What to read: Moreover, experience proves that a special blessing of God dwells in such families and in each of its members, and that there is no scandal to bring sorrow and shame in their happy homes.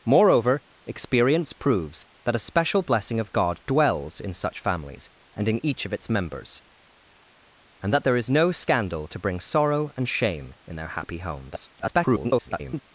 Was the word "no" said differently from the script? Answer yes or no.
no